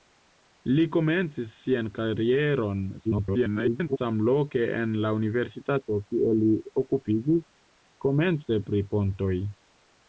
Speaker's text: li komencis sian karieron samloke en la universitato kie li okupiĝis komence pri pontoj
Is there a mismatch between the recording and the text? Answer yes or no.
yes